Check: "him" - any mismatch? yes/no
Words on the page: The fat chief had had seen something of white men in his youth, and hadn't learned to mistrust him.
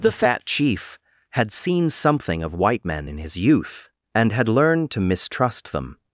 yes